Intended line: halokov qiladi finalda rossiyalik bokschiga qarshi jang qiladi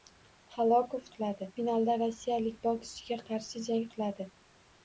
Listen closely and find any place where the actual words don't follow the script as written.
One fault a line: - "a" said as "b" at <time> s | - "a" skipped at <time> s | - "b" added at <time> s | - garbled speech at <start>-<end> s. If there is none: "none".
none